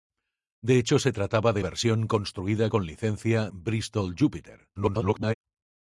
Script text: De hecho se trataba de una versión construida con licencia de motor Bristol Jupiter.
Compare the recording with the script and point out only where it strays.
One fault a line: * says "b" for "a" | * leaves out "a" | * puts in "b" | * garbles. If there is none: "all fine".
* leaves out "una"
* leaves out "de motor"
* garbles